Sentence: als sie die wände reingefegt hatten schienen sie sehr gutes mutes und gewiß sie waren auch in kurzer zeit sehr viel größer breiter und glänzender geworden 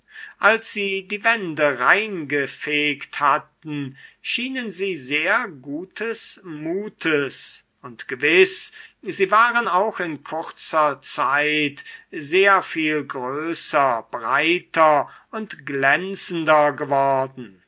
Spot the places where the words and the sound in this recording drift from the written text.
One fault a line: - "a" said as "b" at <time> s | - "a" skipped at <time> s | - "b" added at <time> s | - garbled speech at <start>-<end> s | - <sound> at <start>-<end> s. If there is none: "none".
none